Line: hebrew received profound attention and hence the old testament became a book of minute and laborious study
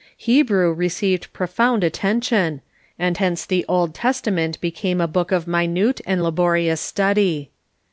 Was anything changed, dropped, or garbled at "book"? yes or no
no